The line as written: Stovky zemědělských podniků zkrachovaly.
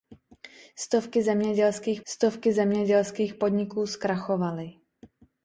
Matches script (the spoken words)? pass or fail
fail